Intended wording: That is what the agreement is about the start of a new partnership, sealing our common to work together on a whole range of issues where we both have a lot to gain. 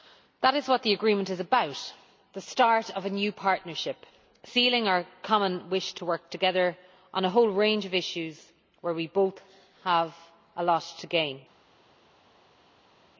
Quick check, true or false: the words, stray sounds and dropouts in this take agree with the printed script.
false